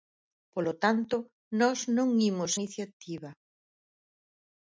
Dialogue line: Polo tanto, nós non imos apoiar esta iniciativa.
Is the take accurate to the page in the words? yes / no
no